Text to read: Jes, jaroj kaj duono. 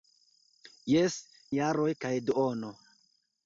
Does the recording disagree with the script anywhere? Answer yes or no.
no